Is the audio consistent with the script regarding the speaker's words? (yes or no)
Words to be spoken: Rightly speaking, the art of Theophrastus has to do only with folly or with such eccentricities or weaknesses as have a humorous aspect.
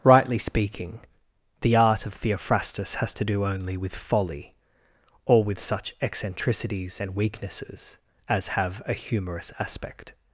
no